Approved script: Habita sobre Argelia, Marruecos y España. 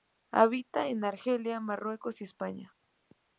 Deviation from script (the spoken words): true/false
true